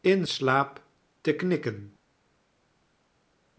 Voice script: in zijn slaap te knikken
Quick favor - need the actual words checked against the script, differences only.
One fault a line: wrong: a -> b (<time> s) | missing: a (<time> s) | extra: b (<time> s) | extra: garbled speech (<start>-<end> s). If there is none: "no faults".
missing: zijn (0.3 s)